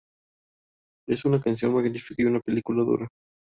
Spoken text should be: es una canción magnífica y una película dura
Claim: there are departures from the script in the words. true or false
false